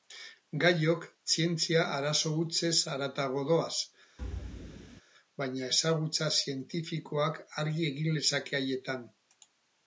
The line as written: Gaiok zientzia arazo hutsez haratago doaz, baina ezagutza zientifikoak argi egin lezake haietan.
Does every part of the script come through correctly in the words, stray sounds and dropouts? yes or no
no